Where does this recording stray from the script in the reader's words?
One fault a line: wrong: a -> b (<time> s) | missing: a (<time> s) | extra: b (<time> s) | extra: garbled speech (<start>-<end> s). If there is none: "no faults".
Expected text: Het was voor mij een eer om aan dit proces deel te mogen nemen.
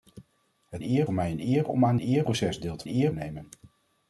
wrong: was -> eer (0.8 s)
wrong: dit -> eer (2.0 s)
wrong: mogen -> eer (2.9 s)